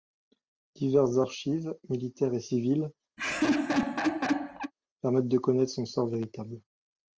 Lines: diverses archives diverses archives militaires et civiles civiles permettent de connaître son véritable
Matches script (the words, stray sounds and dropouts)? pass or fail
fail